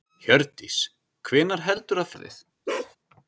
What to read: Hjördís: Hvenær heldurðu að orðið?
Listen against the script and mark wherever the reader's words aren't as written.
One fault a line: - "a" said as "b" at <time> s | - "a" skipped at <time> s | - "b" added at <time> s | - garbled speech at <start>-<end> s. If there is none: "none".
none